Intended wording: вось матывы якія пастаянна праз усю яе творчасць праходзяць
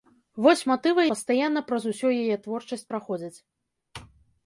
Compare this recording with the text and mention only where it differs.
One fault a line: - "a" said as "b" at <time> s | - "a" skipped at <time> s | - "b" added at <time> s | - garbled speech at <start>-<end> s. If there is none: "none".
- "якія" skipped at 1.0 s